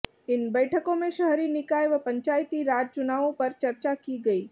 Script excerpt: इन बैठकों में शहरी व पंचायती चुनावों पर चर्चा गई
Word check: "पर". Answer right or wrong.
right